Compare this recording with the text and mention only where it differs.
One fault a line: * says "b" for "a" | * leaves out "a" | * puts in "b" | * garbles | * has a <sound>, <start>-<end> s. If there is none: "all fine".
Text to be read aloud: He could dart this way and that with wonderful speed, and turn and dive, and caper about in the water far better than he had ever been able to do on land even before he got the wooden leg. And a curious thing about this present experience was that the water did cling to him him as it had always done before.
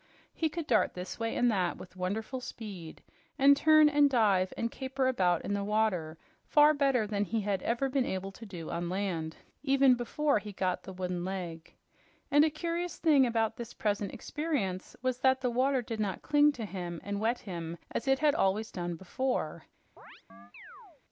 * puts in "not"
* puts in "and wet"
* has a chirp, 20.0-21.0 s